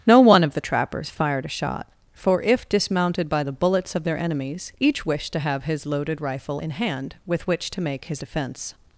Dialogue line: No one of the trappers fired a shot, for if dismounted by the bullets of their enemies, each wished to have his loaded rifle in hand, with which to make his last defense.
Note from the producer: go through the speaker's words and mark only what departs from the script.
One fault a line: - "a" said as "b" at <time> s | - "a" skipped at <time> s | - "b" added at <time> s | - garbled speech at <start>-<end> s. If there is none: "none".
- "last" skipped at 8.2 s